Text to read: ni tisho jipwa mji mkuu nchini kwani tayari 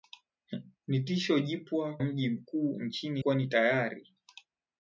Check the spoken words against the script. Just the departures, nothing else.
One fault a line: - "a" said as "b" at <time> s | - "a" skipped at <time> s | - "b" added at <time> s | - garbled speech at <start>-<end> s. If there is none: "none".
none